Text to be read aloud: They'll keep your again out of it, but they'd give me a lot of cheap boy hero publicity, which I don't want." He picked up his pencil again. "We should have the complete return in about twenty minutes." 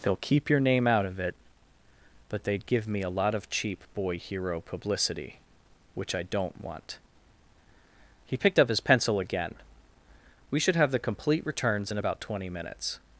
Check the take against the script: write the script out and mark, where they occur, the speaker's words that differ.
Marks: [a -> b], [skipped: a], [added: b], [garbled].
They'll keep your [again -> name] out of it, but they'd give me a lot of cheap boy hero publicity, which I don't want." He picked up his pencil again. "We should have the complete [return -> returns] in about twenty minutes."